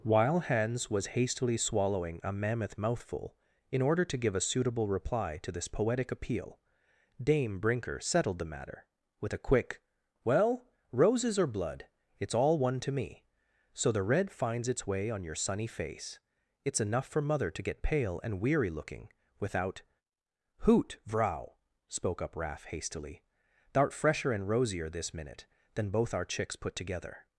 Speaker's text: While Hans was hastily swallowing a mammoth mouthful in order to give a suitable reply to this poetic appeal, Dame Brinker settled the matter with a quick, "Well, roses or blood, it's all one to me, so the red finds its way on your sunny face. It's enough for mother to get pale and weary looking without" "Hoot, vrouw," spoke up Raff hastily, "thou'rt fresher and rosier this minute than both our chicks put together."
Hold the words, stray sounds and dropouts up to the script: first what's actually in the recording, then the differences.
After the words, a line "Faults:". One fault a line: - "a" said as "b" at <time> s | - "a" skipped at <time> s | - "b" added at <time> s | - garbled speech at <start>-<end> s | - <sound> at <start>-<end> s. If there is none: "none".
While Hans was hastily swallowing a mammoth mouthful in order to give a suitable reply to this poetic appeal, Dame Brinker settled the matter with a quick, "Well, roses or blood, it's all one to me, so the red finds its way on your sunny face. It's enough for mother to get pale and weary looking without" "Hoot, vrouw," spoke up Raff hastily, "thou'rt fresher and rosier this minute than both our chicks put together."
Faults:
none